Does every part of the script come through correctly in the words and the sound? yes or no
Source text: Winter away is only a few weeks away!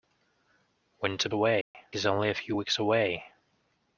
no